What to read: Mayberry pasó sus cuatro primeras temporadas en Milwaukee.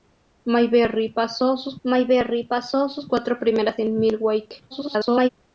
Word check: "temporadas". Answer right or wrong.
wrong